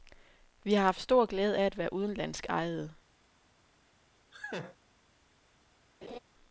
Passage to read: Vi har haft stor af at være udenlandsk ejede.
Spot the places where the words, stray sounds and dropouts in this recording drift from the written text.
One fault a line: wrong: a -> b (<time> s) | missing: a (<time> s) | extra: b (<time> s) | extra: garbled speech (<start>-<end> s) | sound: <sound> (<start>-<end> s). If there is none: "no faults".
extra: glæde (1.2 s)
sound: laugh (4.3-4.8 s)
sound: laugh (6.0-6.2 s)